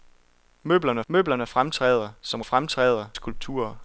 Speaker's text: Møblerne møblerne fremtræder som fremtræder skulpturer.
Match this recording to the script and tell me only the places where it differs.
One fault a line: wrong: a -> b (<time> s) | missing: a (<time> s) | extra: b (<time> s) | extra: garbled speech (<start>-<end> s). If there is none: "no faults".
no faults